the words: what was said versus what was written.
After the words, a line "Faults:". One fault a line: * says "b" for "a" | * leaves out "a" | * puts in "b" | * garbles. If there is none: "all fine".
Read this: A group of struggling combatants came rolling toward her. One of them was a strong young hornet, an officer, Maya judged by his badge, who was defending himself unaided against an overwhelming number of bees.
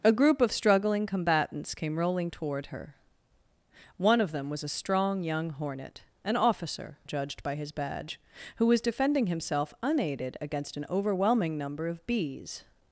A group of struggling combatants came rolling toward her. One of them was a strong young hornet, an officer, Judged by his badge, who was defending himself unaided against an overwhelming number of bees.
Faults:
* leaves out "Maya"